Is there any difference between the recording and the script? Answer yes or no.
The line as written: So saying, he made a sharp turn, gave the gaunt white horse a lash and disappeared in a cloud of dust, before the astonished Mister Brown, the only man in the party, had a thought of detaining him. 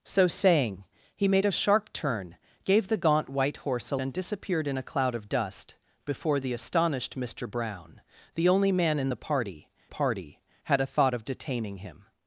yes